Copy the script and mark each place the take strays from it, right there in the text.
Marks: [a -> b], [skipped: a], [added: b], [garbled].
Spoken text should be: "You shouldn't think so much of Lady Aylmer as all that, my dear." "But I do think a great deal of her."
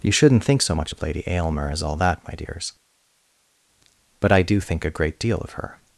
"You shouldn't think so much of Lady Aylmer as all that, my [dear." -> dears] "But I do think a great deal of her."